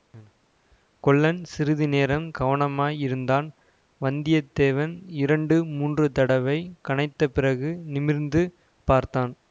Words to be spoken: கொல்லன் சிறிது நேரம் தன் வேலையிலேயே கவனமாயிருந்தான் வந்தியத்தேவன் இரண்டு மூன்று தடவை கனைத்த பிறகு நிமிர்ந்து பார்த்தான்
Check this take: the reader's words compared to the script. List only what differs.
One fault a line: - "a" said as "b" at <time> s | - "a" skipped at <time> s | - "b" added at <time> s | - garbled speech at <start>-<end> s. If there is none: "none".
- "தன் வேலையிலேயே" skipped at 2.2 s